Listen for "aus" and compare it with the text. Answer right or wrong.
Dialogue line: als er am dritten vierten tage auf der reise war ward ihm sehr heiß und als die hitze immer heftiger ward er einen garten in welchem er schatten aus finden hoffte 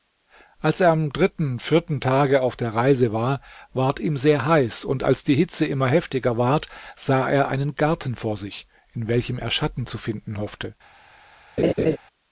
wrong